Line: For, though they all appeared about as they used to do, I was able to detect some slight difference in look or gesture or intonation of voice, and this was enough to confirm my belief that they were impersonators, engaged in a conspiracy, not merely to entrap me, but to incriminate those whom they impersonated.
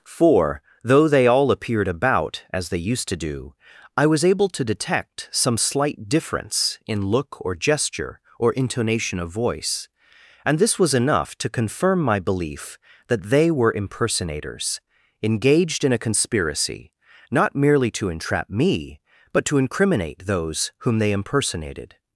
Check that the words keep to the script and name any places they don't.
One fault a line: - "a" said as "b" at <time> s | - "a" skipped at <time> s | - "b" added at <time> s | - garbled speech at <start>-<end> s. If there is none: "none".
none